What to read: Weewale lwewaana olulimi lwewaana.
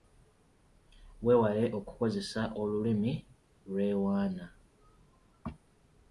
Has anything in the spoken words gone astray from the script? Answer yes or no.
yes